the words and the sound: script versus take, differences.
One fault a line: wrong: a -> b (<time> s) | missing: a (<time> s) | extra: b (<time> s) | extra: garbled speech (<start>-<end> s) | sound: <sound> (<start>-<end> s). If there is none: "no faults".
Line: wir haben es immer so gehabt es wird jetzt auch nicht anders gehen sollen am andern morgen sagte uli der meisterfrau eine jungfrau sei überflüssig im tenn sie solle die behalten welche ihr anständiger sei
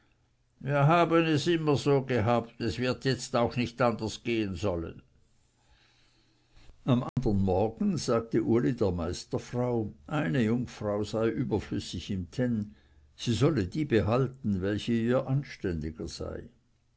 sound: dropout (7.1-7.2 s)